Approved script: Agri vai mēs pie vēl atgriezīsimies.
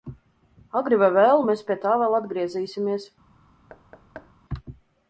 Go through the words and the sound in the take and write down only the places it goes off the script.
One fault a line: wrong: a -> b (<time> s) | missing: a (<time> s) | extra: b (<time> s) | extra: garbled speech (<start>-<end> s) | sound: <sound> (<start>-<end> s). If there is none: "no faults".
extra: vēlu (1.2 s)
extra: tā (1.8 s)
sound: thud (3.7-4.3 s)